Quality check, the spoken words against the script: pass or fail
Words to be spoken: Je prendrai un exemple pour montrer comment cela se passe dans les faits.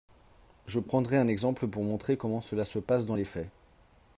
pass